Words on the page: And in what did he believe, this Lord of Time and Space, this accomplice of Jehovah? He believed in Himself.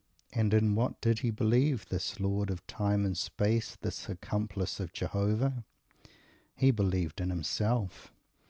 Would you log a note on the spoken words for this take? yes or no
no